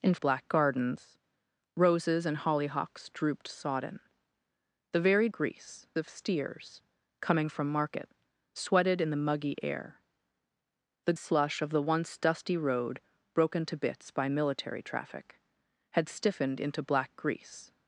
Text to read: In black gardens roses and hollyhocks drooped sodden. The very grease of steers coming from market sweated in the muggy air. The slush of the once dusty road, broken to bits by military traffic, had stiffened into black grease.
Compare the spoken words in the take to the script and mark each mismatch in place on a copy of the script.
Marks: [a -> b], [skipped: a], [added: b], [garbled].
In black gardens roses and hollyhocks drooped sodden. The very grease of steers coming from market sweated in the muggy air. The slush of the once dusty road, broken to bits by military traffic, had stiffened into black grease.